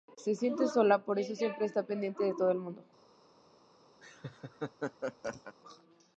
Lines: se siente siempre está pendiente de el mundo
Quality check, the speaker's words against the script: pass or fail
fail